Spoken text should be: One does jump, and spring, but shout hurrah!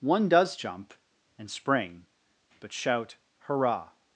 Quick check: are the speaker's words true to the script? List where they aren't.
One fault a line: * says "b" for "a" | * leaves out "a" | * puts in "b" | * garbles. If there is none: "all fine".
all fine